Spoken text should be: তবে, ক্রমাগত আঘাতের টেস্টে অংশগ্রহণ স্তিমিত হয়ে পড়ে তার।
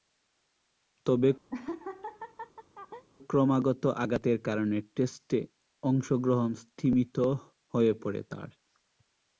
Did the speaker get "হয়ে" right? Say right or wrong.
right